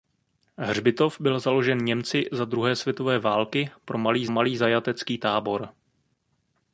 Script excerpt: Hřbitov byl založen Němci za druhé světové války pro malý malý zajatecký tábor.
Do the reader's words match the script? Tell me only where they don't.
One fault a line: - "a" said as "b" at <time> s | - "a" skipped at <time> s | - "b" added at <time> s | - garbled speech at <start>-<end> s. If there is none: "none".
none